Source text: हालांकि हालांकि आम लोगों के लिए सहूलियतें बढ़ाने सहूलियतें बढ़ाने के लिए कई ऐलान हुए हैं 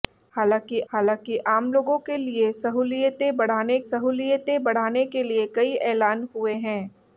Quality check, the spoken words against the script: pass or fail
pass